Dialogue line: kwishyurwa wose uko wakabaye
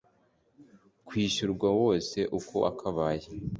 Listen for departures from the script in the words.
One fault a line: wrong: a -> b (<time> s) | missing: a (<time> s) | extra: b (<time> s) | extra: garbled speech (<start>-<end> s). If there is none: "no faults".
no faults